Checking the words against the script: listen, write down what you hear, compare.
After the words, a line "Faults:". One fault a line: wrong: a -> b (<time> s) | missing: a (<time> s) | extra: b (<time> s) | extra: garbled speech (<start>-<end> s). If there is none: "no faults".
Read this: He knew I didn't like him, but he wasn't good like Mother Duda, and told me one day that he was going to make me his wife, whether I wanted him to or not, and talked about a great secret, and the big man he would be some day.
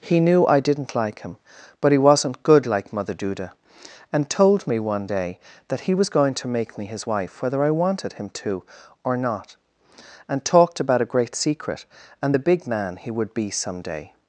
He knew I didn't like him, but he wasn't good like Mother Duda, and told me one day that he was going to make me his wife, whether I wanted him to or not, and talked about a great secret, and the big man he would be some day.
Faults:
no faults